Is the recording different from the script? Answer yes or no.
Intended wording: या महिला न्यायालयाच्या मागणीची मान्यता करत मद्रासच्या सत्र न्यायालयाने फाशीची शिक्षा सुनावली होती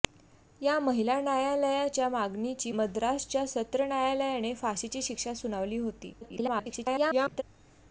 yes